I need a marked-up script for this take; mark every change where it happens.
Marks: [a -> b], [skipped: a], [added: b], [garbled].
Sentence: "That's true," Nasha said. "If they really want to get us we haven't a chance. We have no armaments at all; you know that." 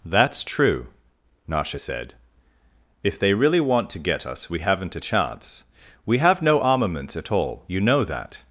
"That's true," Nasha said. "If they really want to get us we haven't a chance. We have no armaments at all; you know that."